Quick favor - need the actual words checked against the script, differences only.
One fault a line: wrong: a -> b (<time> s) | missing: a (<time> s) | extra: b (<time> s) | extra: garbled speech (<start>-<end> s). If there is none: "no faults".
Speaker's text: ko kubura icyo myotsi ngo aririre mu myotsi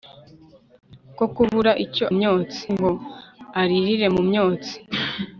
no faults